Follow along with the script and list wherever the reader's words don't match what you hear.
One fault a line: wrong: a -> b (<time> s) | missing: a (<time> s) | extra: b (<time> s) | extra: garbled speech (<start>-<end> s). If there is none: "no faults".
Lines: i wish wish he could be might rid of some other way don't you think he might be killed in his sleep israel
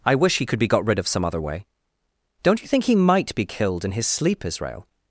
missing: wish (0.4 s)
wrong: might -> got (0.7 s)